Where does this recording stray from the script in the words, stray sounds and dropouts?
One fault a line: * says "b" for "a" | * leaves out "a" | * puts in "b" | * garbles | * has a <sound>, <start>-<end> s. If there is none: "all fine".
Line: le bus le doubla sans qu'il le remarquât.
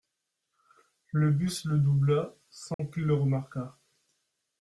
* has a dropout, 2.7-2.8 s